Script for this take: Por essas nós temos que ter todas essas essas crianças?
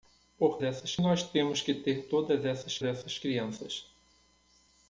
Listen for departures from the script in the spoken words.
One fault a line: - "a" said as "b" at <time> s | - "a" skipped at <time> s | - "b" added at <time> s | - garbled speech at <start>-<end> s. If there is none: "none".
none